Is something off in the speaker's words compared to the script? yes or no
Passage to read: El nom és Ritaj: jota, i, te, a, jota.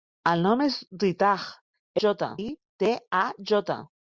no